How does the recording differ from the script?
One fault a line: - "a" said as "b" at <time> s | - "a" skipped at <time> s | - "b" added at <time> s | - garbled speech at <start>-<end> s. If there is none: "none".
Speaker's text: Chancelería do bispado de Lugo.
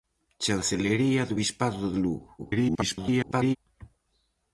- garbled speech at 2.4-3.6 s